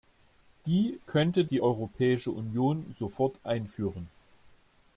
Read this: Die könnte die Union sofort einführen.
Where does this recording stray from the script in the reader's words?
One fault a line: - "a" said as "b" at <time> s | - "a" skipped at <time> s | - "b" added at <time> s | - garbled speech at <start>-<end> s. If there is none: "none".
- "Europäische" added at 1.6 s